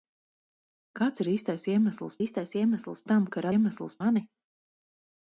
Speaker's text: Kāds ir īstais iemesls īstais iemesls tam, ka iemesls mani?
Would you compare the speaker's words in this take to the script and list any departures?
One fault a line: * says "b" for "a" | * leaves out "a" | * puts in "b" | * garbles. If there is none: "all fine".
all fine